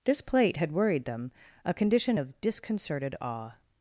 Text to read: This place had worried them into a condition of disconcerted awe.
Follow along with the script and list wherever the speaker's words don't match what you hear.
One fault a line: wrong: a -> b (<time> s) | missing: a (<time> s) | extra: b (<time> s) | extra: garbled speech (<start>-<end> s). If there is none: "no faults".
wrong: place -> plate (0.2 s)
missing: into (1.3 s)